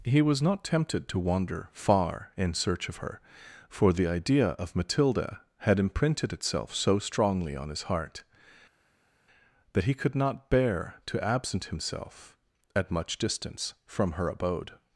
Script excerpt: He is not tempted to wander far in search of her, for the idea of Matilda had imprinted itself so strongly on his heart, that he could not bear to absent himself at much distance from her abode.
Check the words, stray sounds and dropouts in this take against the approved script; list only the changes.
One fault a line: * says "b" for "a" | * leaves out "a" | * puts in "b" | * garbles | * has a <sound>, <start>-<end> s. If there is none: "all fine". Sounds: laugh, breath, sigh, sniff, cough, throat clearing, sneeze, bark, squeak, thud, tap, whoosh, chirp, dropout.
* says "was" for "is"